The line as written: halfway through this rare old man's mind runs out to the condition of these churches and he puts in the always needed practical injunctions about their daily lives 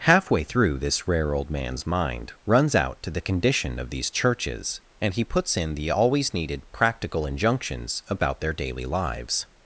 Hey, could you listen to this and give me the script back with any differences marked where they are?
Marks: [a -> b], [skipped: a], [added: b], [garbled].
halfway through this rare old man's mind runs out to the condition of these churches and he puts in the always needed practical injunctions about their daily lives